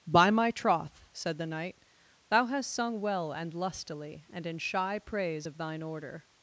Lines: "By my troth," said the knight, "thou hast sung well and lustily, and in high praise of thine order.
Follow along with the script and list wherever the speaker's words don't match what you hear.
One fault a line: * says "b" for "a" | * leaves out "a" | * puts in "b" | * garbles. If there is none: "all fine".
* says "shy" for "high"